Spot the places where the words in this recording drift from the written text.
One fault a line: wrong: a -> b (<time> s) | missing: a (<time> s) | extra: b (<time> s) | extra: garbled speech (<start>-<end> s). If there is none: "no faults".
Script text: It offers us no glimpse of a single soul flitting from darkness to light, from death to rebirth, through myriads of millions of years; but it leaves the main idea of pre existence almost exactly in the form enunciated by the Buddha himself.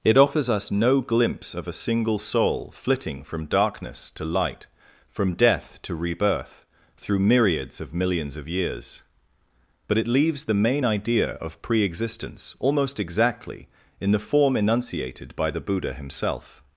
no faults